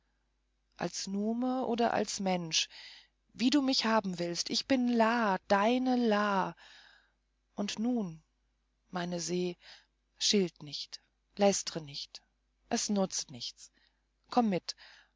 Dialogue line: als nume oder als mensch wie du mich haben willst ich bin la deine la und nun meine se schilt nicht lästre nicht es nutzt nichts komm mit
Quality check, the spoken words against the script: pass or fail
pass